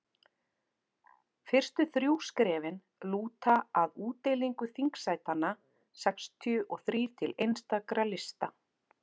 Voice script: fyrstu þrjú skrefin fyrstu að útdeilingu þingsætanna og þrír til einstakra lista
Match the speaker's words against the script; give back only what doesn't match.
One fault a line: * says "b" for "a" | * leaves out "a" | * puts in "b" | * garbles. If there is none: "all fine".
* says "lúta" for "fyrstu"
* puts in "sextíu"